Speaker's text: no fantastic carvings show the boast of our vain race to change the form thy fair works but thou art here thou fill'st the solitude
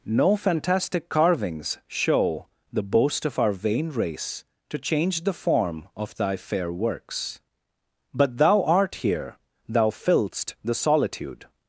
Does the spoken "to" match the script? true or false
true